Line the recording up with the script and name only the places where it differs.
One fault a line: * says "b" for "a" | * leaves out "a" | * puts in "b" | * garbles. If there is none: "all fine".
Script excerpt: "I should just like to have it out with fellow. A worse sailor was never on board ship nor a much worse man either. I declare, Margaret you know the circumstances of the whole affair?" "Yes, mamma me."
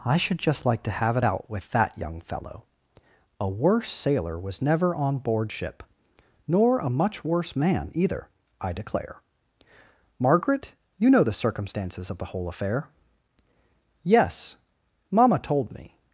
* puts in "that young"
* puts in "told"